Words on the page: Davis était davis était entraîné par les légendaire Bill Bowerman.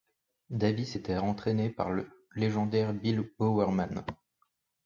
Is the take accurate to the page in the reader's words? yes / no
no